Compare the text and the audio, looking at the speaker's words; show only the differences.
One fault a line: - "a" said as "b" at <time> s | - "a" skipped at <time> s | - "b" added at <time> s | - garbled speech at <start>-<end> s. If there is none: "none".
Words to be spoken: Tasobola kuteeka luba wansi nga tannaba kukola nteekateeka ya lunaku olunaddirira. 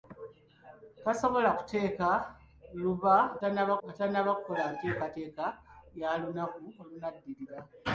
- "wansi" said as "tannaba" at 3.4 s